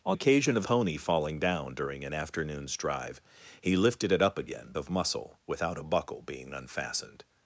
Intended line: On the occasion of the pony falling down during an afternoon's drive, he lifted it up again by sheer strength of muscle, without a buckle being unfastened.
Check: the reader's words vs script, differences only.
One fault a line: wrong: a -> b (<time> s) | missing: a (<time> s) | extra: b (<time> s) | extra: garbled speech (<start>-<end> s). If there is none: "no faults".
missing: the (0.2 s)
missing: the (0.6 s)
missing: by sheer strength (4.7 s)